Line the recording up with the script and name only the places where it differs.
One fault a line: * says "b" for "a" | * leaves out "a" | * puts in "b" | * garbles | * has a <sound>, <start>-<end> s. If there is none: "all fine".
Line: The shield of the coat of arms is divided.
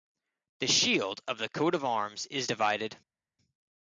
all fine